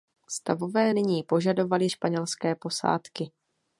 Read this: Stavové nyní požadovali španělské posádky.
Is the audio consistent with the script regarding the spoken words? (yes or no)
yes